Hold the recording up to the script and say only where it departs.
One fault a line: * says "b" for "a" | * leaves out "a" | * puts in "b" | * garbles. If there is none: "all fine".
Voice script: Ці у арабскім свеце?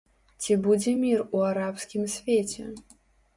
* puts in "будзе мір"